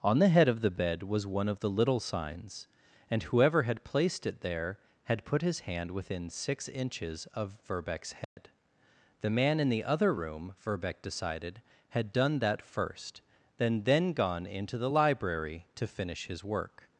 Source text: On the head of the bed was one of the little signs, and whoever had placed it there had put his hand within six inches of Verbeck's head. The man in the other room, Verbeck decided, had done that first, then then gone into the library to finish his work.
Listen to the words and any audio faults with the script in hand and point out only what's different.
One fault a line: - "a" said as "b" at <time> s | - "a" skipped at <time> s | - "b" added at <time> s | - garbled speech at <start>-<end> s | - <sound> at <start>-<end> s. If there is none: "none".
- dropout at 8.2-8.4 s